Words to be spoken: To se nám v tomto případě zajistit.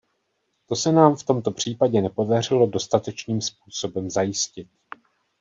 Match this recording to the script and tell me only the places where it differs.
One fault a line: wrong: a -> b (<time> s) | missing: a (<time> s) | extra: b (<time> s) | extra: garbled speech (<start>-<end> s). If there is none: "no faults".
extra: nepodařilo dostatečným způsobem (2.0 s)